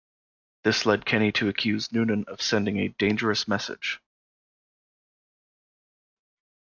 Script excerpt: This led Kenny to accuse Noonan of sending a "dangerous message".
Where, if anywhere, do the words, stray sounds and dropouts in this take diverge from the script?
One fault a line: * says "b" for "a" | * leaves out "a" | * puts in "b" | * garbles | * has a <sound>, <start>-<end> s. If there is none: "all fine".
all fine